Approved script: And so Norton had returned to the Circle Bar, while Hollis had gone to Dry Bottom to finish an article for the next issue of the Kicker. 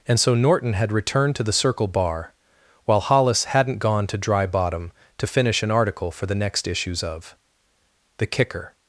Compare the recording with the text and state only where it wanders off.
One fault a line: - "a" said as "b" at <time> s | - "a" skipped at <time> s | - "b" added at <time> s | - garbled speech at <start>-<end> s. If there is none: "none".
- "had" said as "hadn't" at 3.5 s
- "issue" said as "issues" at 6.7 s